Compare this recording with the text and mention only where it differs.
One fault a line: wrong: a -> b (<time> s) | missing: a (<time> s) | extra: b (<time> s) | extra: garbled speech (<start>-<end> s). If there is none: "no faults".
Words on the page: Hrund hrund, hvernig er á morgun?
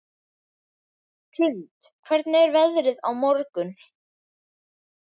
missing: hrund (1.9 s)
extra: veðrið (2.6 s)